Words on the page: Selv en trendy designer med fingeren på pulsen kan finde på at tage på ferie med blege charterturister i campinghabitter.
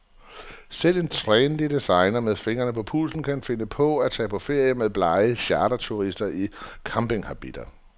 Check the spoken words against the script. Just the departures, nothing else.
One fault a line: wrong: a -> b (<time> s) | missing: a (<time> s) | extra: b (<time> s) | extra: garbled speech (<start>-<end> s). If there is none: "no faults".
no faults